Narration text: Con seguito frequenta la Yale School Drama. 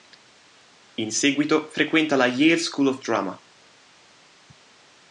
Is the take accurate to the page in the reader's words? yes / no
no